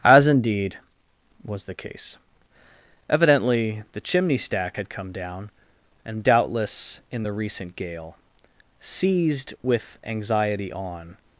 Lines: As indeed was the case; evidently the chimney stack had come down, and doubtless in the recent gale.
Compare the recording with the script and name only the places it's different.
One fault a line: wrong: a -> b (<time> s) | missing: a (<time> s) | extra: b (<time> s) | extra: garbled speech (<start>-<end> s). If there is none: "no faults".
extra: Seized with anxiety on (8.8 s)